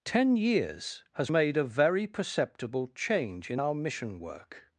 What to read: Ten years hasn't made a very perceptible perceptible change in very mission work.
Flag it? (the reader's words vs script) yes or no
yes